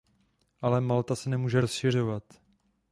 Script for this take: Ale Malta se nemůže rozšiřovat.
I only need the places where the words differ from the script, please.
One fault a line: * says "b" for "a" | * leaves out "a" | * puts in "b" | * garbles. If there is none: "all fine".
all fine